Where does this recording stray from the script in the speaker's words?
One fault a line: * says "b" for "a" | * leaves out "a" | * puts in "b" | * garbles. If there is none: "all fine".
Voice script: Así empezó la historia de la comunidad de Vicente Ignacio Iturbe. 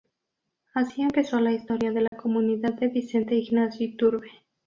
all fine